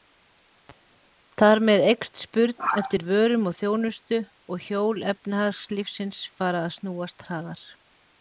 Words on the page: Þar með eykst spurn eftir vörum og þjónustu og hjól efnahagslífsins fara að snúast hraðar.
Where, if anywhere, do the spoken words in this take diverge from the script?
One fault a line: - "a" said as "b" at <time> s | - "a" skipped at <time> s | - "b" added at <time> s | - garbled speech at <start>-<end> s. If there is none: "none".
none